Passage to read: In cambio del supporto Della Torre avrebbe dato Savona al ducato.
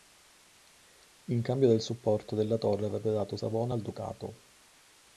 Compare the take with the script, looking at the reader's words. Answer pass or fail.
pass